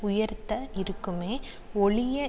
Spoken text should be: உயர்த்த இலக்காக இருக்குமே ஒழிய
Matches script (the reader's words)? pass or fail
fail